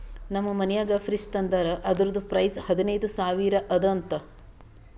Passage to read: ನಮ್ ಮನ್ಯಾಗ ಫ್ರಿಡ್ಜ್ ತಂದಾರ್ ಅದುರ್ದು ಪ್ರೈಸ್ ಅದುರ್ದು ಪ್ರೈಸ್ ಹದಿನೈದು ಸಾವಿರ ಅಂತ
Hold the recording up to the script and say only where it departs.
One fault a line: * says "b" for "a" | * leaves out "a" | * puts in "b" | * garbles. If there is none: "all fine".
* leaves out "ಅದುರ್ದು ಪ್ರೈಸ್"
* puts in "ಅದ"